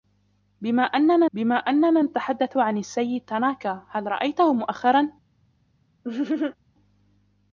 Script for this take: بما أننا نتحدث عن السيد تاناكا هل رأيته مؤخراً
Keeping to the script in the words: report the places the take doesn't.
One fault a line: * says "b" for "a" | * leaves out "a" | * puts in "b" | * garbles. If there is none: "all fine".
* puts in "بما أننا"